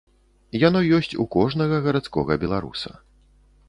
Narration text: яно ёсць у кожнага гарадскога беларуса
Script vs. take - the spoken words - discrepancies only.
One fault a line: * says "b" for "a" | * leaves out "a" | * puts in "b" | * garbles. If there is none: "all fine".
all fine